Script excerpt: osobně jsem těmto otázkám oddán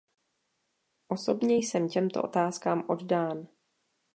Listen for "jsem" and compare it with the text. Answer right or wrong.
right